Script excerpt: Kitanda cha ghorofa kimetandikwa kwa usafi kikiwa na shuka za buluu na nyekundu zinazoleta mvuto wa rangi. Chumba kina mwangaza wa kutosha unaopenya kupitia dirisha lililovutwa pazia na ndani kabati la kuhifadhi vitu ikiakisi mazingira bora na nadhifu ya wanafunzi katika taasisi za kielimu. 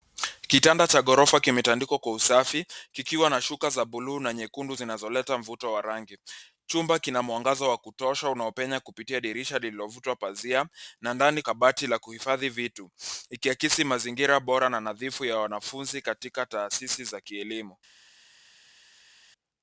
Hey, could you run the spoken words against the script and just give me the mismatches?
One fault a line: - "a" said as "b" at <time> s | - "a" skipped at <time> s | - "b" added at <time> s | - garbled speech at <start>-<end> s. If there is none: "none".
none